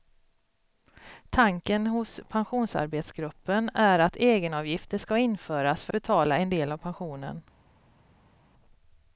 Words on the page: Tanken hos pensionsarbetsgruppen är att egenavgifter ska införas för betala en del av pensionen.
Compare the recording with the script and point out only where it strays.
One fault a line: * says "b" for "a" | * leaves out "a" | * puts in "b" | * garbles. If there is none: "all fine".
all fine